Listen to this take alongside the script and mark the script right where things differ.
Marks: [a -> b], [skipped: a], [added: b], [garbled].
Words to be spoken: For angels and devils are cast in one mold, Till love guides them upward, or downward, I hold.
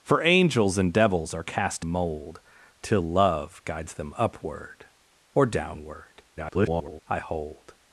For angels and devils are cast [skipped: in one] mold, Till love guides them upward, or downward, [garbled] I hold.